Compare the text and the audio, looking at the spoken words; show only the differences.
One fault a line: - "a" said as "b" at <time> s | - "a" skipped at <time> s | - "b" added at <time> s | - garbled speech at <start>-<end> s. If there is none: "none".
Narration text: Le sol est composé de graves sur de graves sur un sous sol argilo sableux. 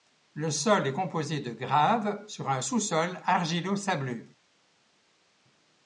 - "de graves sur" skipped at 2.5 s